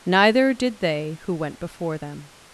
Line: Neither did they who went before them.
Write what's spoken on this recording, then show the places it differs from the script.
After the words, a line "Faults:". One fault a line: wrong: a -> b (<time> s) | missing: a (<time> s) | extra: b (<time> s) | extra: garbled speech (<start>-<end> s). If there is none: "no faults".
Neither did they who went before them.
Faults:
no faults